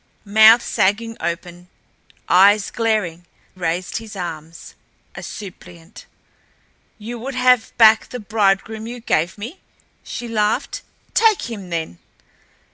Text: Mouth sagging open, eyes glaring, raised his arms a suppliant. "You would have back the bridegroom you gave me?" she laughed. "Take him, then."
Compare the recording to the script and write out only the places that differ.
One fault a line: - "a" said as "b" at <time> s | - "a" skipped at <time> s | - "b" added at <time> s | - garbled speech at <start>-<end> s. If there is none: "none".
none